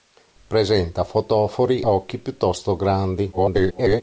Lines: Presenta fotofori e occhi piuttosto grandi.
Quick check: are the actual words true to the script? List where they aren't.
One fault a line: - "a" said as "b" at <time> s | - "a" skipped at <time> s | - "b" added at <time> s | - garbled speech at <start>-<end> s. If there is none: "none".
- "e" skipped at 1.8 s
- garbled speech at 3.3-4.0 s